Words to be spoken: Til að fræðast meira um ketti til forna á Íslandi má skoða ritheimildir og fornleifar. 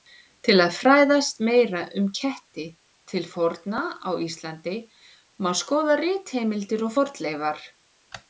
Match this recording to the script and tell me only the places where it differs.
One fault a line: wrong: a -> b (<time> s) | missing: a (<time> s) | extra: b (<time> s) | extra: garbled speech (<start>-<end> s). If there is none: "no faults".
no faults